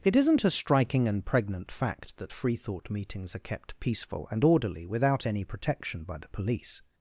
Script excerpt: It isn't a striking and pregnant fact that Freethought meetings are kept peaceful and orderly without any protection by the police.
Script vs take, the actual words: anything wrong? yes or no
no